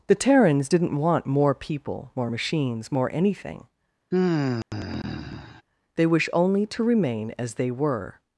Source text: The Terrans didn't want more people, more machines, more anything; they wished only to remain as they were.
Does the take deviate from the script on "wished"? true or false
true